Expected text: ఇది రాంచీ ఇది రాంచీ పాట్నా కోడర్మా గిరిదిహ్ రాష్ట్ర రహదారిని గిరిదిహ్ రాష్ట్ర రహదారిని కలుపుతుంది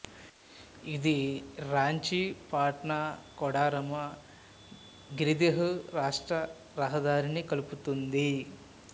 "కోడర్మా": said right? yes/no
yes